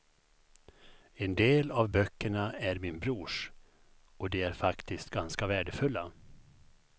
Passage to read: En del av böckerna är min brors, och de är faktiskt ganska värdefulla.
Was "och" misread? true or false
false